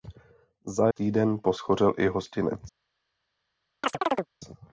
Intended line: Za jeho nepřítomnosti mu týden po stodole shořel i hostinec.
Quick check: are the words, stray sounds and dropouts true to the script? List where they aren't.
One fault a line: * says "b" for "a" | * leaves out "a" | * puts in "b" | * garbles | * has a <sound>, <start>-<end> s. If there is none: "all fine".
* leaves out "jeho nepřítomnosti mu"
* leaves out "stodole"
* has a chirp, 3.8-4.3 s